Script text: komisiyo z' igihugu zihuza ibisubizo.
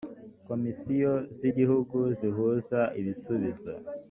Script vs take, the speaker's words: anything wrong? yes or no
no